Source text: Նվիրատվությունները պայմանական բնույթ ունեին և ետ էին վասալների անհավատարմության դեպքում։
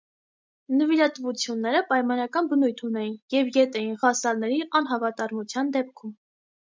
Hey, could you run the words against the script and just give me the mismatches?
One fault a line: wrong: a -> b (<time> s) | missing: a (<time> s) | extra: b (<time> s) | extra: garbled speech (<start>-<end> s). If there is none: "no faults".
no faults